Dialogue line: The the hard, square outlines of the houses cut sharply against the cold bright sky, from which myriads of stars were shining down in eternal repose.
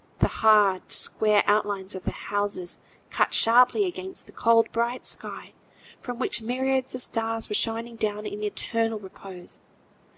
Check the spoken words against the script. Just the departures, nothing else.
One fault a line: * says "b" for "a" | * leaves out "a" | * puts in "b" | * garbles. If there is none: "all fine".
* leaves out "the"